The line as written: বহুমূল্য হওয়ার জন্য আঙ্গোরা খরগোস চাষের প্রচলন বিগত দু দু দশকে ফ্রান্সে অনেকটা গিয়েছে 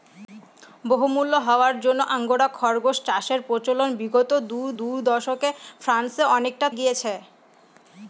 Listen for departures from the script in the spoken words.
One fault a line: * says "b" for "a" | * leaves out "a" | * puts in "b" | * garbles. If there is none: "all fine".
all fine